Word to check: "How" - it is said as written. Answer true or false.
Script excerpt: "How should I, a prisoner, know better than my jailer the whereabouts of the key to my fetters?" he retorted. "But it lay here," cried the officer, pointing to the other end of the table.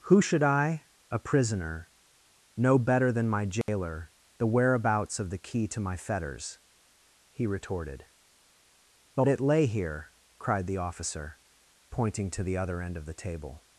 false